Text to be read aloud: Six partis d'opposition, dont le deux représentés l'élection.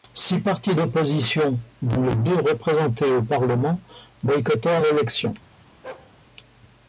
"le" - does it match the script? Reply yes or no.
no